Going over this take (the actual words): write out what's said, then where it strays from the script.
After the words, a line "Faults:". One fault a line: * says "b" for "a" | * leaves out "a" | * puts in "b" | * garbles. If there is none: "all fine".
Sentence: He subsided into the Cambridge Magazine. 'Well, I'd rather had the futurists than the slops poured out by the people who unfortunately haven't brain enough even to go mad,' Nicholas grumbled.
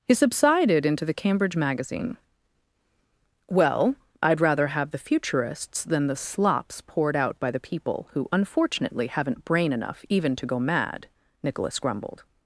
He subsided into the Cambridge Magazine. 'Well, I'd rather have the futurists than the slops poured out by the people who unfortunately haven't brain enough even to go mad,' Nicholas grumbled.
Faults:
* says "have" for "had"